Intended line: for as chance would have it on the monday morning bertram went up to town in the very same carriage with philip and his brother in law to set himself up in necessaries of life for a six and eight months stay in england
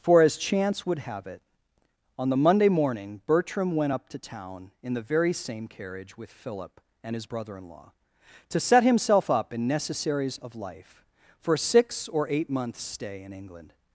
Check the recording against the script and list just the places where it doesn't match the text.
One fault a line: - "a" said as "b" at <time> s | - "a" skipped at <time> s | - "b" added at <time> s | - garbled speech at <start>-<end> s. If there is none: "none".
- "and" said as "or" at 12.1 s